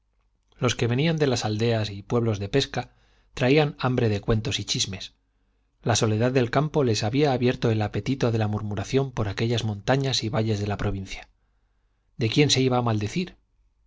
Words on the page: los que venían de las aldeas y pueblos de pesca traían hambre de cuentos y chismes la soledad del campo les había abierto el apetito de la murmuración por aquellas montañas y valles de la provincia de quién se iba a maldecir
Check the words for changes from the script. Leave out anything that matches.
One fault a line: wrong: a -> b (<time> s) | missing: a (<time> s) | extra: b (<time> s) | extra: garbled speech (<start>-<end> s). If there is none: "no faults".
no faults